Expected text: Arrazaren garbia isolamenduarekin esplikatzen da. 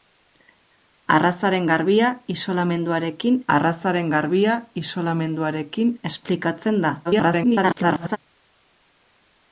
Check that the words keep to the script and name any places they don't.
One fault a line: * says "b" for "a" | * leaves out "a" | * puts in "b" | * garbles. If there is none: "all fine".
* puts in "arrazaren garbia isolamenduarekin"
* garbles